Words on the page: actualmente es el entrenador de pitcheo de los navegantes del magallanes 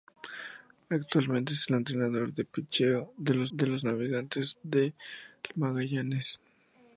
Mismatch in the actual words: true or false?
true